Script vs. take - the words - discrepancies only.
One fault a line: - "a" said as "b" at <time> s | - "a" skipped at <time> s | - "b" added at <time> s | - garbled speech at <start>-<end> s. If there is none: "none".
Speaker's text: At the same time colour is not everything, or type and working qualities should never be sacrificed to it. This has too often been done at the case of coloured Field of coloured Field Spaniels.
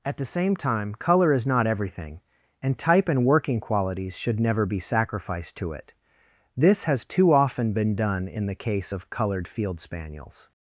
- "or" said as "and" at 2.6 s
- "at" said as "in" at 8.3 s
- "of coloured Field" skipped at 9.8 s